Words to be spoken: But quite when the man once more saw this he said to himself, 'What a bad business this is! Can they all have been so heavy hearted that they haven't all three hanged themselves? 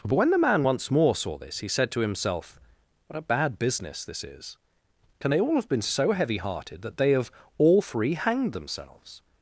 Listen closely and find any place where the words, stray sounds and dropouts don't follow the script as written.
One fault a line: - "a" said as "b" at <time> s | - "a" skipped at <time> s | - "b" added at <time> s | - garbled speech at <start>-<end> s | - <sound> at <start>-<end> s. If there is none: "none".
- "quite" skipped at 0.1 s
- "haven't" said as "have" at 7.1 s